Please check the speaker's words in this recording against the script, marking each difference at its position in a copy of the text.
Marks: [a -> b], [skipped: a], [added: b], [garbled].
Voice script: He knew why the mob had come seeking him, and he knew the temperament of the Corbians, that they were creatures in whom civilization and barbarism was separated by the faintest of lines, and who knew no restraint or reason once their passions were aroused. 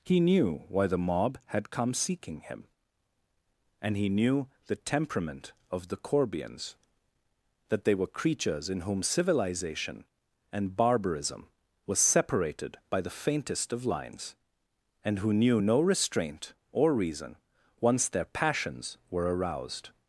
He knew why the mob had come seeking him, and he knew the temperament of the Corbians, that they were creatures in whom civilization and barbarism was separated by the faintest of lines, and who knew no restraint or reason once their passions were aroused.